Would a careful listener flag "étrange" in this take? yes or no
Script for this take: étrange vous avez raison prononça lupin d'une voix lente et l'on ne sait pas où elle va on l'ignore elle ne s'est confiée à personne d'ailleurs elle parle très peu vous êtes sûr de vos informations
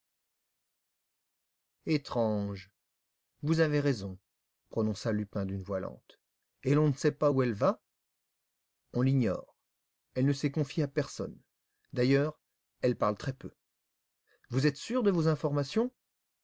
no